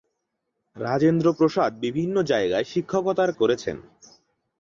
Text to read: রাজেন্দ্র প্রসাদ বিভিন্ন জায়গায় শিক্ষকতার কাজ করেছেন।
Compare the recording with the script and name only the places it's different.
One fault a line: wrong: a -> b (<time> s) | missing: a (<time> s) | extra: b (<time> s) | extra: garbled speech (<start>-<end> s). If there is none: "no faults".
missing: কাজ (3.3 s)